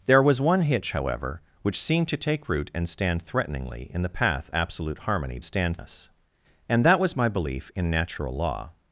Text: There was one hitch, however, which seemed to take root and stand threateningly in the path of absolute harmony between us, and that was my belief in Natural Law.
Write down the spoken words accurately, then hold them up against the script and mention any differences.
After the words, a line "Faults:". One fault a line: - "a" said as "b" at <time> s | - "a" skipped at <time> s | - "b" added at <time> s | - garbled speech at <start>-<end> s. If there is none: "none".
There was one hitch, however, which seemed to take root and stand threateningly in the path absolute harmony stand us, and that was my belief in Natural Law.
Faults:
- "of" skipped at 4.5 s
- "between" said as "stand" at 5.4 s